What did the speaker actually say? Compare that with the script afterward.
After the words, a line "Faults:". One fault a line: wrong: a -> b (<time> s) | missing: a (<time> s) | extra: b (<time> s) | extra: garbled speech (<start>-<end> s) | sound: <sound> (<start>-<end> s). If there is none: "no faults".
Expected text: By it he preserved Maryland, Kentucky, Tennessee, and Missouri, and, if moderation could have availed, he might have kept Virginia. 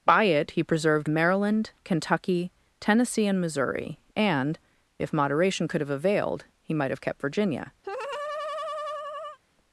By it he preserved Maryland, Kentucky, Tennessee, and Missouri, and, if moderation could have availed, he might have kept Virginia.
Faults:
sound: laugh (7.8-9.4 s)